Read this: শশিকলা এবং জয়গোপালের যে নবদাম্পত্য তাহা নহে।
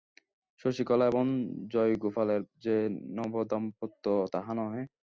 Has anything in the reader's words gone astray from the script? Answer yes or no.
no